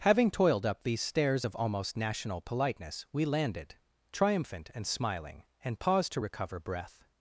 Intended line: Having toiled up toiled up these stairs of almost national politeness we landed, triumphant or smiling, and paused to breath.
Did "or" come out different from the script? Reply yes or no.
yes